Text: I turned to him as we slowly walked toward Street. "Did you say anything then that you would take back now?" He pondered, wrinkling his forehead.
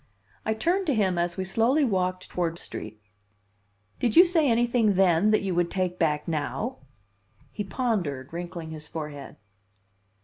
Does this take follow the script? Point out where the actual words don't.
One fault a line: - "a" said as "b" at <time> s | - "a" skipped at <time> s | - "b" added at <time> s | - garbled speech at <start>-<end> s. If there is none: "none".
none